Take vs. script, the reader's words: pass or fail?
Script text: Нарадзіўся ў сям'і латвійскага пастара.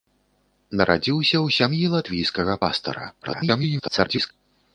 fail